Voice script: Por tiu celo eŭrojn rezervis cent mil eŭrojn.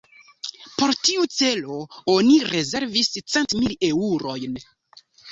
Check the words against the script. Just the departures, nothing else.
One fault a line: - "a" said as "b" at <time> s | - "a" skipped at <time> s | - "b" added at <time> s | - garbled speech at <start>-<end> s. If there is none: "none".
- "eŭrojn" said as "oni" at 2.1 s